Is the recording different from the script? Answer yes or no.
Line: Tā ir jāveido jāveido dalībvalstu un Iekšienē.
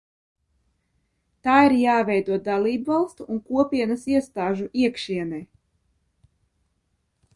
yes